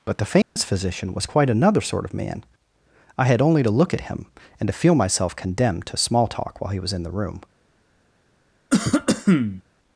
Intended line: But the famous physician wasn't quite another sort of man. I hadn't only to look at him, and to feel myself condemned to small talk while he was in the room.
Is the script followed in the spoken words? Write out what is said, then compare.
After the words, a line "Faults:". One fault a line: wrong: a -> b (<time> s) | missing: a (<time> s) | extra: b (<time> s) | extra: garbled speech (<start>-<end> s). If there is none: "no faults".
But the famous physician was quite another sort of man. I had only to look at him, and to feel myself condemned to small talk while he was in the room.
Faults:
wrong: wasn't -> was (1.1 s)
wrong: hadn't -> had (3.2 s)